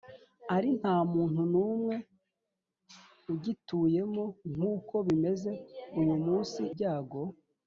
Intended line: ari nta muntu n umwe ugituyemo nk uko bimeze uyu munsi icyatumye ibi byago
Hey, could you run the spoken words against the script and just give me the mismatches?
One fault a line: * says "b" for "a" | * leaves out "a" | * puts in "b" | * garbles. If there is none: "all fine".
* leaves out "icyatumye ibi"